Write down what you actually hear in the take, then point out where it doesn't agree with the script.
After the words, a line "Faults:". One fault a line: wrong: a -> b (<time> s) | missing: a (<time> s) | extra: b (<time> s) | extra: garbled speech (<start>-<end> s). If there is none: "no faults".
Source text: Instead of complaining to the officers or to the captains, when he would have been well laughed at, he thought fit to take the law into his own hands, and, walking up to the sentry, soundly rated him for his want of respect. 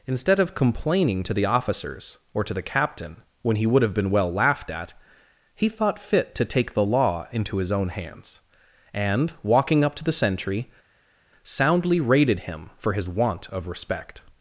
Instead of complaining to the officers or to the captain, when he would have been well laughed at, he thought fit to take the law into his own hands, and, walking up to the sentry, soundly rated him for his want of respect.
Faults:
wrong: captains -> captain (2.6 s)